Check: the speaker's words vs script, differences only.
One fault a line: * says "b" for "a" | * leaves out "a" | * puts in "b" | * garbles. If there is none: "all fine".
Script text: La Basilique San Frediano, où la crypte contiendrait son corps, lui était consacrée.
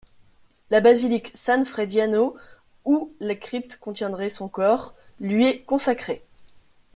* says "est" for "était"